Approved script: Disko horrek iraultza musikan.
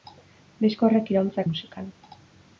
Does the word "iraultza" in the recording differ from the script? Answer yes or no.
no